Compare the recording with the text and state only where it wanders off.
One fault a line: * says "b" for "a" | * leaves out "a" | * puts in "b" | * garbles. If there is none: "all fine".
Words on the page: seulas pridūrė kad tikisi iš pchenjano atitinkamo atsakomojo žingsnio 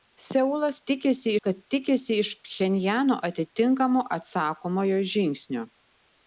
* says "tikisi" for "pridūrė"